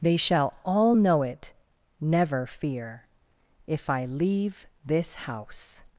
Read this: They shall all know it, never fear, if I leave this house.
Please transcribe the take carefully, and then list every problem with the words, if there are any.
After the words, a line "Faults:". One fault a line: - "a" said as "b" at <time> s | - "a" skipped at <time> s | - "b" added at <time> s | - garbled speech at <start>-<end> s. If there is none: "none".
They shall all know it, never fear, if I leave this house.
Faults:
none